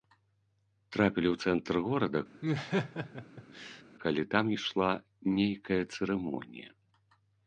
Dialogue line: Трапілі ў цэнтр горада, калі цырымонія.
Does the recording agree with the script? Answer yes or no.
no